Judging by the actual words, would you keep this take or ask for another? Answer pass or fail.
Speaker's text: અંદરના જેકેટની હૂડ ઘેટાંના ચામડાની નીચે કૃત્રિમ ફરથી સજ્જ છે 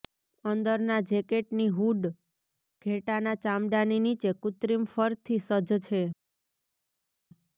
pass